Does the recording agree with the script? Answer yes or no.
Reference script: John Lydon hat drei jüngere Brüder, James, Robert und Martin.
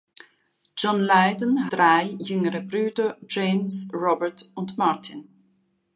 no